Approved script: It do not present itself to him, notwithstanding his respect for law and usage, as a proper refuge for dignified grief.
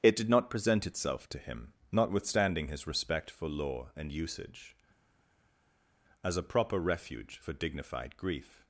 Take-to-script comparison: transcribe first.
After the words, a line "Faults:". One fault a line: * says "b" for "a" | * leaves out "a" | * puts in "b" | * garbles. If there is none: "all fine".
It did not present itself to him, notwithstanding his respect for law and usage, as a proper refuge for dignified grief.
Faults:
* says "did" for "do"